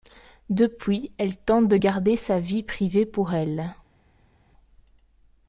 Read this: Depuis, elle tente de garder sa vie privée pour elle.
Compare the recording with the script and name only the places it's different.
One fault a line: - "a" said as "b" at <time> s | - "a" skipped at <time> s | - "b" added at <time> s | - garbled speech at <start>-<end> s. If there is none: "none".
none